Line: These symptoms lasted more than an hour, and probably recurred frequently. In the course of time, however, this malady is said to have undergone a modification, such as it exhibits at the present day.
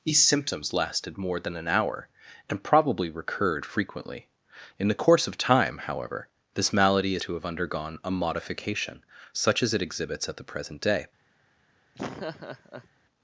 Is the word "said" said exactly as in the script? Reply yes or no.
no